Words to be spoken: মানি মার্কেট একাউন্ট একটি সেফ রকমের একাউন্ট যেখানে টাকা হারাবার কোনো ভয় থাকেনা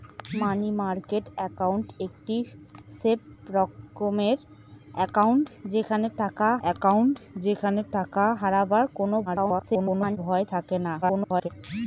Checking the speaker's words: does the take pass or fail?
fail